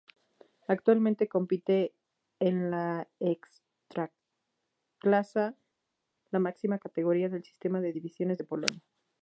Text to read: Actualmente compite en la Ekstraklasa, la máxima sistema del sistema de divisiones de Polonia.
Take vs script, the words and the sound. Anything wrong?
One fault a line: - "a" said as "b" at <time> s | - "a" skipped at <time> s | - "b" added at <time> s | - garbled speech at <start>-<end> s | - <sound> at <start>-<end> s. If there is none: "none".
- "sistema" said as "categoría" at 6.8 s